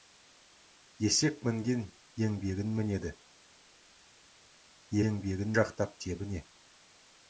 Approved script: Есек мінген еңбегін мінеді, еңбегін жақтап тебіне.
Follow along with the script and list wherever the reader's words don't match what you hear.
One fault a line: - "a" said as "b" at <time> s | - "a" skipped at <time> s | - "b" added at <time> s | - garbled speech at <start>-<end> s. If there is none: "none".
none